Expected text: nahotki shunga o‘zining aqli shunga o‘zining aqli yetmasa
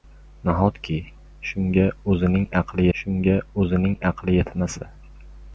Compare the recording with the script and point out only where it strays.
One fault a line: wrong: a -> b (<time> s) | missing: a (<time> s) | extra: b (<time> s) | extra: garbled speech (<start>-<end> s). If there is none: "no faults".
no faults